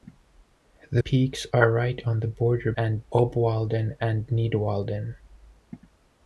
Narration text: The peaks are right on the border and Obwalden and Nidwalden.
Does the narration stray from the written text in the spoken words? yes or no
no